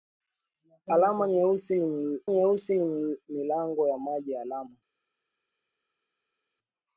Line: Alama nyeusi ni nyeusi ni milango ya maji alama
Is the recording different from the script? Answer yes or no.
no